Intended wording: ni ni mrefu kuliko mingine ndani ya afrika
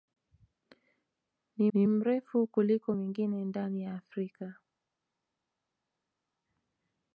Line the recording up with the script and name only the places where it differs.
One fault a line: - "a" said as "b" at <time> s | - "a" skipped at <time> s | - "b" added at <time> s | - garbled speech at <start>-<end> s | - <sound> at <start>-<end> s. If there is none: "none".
none